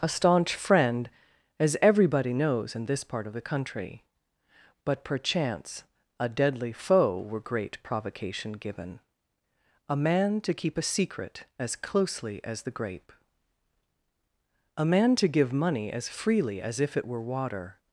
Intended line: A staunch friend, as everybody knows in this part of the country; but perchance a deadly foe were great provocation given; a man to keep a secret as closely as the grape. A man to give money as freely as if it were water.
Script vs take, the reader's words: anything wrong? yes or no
no